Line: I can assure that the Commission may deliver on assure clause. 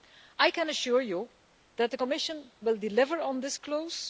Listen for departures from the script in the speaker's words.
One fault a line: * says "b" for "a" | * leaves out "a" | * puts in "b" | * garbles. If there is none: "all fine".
* puts in "you"
* says "will" for "may"
* says "this" for "assure"